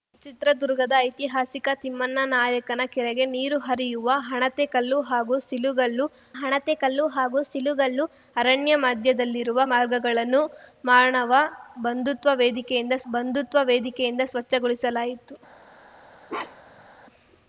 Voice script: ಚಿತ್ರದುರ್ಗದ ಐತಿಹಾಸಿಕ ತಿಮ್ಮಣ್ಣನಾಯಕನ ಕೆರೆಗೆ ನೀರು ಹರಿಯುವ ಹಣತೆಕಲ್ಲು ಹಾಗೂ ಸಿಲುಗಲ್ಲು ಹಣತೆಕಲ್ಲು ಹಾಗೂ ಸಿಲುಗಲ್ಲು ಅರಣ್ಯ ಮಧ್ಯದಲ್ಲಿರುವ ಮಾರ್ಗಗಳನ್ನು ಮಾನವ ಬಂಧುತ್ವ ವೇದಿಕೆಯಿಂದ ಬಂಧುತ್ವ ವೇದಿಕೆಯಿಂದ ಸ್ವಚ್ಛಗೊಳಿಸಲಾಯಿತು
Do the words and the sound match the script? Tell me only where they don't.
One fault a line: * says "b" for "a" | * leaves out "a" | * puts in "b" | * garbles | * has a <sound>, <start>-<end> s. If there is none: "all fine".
* has a bark, 16.3-16.9 s